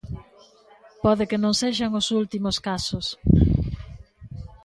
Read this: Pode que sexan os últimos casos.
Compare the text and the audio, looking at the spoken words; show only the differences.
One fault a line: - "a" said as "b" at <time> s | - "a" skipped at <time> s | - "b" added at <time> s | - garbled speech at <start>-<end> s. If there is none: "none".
- "non" added at 1.4 s